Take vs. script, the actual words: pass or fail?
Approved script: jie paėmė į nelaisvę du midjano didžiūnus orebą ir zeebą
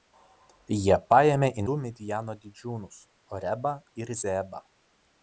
fail